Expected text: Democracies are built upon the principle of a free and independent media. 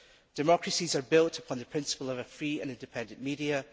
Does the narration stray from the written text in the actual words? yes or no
no